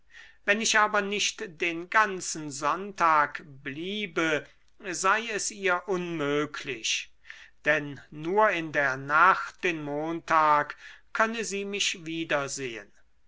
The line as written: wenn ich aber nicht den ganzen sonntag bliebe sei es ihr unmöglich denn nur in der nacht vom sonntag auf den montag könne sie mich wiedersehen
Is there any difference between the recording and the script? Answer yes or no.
yes